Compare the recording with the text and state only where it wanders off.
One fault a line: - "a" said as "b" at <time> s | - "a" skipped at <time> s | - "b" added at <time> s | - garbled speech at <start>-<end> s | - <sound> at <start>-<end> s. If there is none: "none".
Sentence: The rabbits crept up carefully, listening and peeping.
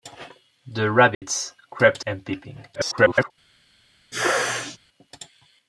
- dropout at 1.1-1.2 s
- "up carefully listening" skipped at 2.0 s
- garbled speech at 2.7-3.3 s
- sneeze at 4.1-4.8 s